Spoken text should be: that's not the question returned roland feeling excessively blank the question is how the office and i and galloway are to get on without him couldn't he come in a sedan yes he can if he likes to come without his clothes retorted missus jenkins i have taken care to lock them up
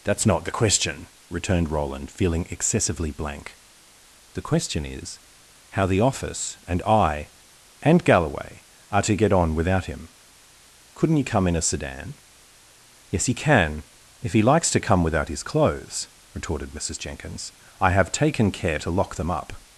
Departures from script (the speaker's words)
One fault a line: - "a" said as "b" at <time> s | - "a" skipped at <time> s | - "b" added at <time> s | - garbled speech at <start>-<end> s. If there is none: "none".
none